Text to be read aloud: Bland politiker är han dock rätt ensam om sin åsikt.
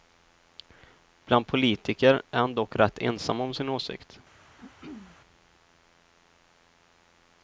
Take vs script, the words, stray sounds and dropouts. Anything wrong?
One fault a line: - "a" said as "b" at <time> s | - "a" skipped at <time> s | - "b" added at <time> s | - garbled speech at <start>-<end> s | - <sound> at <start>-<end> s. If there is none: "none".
- throat clearing at 4.6-5.2 s